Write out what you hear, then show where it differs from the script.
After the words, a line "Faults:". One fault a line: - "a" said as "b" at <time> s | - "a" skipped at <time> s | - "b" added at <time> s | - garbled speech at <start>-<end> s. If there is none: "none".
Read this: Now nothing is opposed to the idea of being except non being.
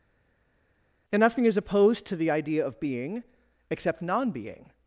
And nothing is opposed to the idea of being except non being.
Faults:
- "Now" said as "And" at 1.1 s